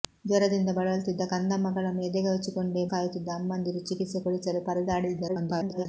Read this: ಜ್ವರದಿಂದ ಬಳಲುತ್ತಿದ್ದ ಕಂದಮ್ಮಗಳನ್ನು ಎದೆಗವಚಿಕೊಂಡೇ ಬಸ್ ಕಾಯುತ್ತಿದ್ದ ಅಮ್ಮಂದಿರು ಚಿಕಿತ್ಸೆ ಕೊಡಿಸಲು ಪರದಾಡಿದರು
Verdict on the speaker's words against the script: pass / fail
fail